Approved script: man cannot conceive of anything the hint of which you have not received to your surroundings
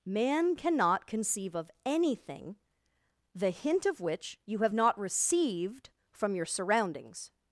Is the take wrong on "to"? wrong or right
wrong